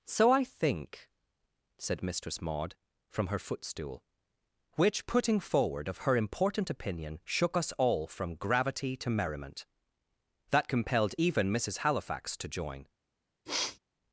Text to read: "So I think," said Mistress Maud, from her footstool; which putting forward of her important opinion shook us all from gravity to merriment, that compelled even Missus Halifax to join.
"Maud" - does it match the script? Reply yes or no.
yes